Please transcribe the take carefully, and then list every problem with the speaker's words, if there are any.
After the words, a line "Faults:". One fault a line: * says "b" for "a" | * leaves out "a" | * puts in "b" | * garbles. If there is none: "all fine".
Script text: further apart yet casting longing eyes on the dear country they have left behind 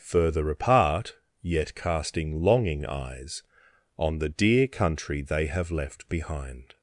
further apart yet casting longing eyes on the dear country they have left behind
Faults:
all fine